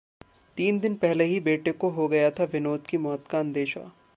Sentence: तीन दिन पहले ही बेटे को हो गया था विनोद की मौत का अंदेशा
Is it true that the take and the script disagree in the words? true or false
false